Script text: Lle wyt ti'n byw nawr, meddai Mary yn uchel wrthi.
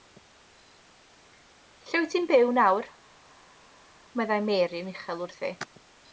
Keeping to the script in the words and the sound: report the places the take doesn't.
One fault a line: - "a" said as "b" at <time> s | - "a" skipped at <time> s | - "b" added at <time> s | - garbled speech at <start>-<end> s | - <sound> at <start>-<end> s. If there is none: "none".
none